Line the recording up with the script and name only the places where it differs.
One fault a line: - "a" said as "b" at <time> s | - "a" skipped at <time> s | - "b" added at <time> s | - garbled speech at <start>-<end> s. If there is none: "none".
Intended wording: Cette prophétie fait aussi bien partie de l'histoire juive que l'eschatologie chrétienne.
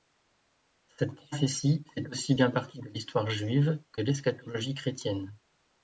none